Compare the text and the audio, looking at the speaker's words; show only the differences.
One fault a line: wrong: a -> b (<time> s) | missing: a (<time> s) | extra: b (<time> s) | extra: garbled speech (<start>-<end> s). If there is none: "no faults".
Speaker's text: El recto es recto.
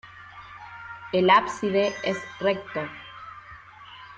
wrong: recto -> ábside (1.3 s)